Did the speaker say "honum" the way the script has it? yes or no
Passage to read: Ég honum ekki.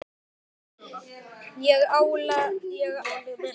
yes